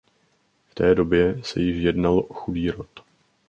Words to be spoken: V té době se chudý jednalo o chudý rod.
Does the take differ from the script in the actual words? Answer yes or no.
yes